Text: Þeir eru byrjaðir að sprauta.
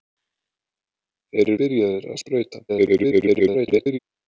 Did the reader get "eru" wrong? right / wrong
wrong